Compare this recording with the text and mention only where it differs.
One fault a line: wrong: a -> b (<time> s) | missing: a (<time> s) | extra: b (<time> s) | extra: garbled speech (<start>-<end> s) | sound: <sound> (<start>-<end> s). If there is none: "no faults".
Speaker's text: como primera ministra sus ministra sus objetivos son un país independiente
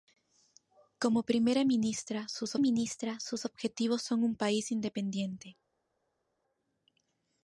no faults